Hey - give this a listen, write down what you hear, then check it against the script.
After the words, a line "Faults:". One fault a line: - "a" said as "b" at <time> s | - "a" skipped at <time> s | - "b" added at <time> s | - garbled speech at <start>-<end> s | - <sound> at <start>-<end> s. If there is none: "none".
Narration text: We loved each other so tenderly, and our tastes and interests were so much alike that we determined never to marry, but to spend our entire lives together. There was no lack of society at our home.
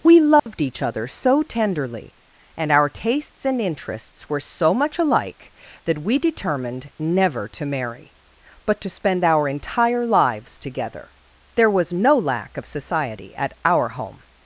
We loved each other so tenderly, and our tastes and interests were so much alike that we determined never to marry, but to spend our entire lives together. There was no lack of society at our home.
Faults:
- dropout at 0.4-0.5 s